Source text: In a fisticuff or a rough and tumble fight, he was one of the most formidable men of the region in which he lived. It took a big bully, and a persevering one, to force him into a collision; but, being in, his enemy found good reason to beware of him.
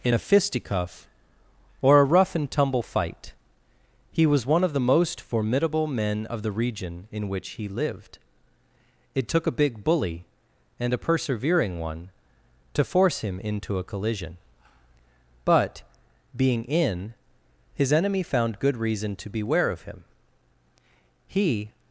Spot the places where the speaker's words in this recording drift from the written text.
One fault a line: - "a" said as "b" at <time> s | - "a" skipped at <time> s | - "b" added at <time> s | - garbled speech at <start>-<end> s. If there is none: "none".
- "He" added at 21.2 s